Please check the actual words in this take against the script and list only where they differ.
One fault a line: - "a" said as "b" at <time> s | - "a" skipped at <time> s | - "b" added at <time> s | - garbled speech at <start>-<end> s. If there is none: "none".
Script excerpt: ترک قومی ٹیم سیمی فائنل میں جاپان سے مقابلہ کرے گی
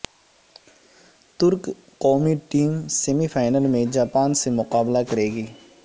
none